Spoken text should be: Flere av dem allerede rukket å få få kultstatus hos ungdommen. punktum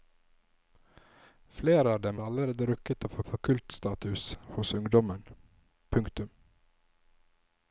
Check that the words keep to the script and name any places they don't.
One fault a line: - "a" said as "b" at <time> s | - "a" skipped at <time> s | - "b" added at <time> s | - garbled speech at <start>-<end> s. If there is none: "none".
none